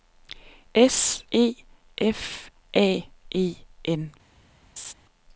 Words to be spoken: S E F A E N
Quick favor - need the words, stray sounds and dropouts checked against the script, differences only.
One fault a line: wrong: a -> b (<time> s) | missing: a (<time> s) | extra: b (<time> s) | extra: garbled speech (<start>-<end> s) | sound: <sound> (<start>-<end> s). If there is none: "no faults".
sound: laugh (4.8-4.9 s)